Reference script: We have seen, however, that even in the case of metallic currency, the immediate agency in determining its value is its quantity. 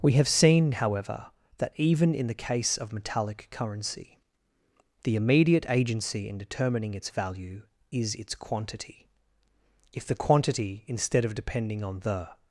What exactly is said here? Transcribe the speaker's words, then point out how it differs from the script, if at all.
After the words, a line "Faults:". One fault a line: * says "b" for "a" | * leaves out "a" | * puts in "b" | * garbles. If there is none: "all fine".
We have seen, however, that even in the case of metallic currency, the immediate agency in determining its value is its quantity. If the quantity, instead of depending on the
Faults:
* puts in "If the quantity instead of depending on the"